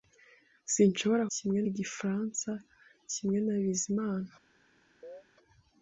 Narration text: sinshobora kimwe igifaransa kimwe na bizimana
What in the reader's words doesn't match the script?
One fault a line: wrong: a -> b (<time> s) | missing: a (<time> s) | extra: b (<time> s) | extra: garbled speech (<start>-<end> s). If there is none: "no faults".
no faults